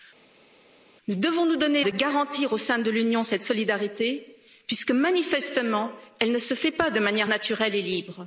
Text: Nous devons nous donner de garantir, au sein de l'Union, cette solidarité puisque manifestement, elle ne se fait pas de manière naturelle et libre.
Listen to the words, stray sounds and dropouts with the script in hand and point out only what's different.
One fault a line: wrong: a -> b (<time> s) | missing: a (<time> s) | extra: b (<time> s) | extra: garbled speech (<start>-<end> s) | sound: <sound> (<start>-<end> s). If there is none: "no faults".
no faults